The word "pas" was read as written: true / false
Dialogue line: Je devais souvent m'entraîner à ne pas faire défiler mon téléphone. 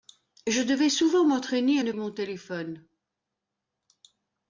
false